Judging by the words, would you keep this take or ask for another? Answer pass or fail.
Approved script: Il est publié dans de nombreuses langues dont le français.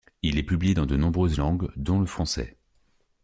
pass